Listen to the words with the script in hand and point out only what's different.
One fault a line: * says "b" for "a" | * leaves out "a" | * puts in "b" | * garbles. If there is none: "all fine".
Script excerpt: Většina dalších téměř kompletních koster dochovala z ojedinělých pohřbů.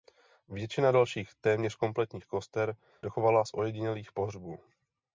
all fine